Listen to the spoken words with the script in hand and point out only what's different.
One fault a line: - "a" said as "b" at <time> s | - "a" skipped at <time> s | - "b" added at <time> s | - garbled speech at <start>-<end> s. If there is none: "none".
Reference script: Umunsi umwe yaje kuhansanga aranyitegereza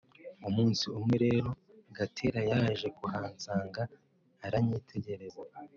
- "rero Gatera" added at 1.2 s